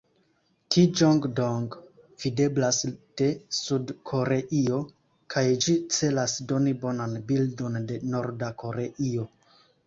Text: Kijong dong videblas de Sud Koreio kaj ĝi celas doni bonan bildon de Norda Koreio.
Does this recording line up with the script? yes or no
yes